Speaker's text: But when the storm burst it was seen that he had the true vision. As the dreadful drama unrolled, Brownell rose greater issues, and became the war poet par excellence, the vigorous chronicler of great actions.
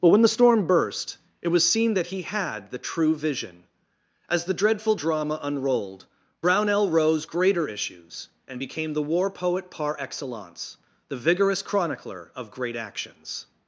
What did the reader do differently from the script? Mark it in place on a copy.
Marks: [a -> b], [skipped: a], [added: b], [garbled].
But when the storm burst it was seen that he had the true vision. As the dreadful drama unrolled, Brownell rose greater issues, and became the war poet par excellence, the vigorous chronicler of great actions.